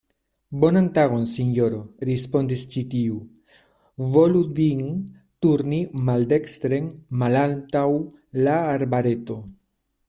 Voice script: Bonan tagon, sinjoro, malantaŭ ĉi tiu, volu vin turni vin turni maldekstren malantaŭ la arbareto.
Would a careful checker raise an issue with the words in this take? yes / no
yes